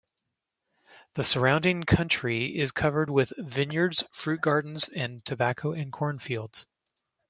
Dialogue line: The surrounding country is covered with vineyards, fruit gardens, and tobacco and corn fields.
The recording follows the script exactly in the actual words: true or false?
true